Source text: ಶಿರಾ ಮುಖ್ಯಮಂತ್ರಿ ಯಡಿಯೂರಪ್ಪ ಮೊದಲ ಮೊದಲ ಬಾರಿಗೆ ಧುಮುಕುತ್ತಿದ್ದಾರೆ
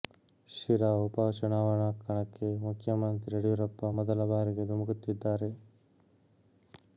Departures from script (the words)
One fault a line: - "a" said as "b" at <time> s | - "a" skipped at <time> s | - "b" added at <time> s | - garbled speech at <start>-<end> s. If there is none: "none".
- "ಉಪ ಚುನಾವಣಾ ಕಣಕ್ಕೆ" added at 1.0 s
- "ಮೊದಲ" skipped at 4.3 s